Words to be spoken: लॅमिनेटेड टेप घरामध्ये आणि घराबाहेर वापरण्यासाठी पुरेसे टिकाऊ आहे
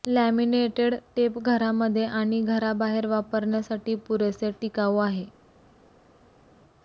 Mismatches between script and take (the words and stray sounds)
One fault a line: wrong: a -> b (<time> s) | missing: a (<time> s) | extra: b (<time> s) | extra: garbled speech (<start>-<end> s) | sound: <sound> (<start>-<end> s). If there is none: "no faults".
no faults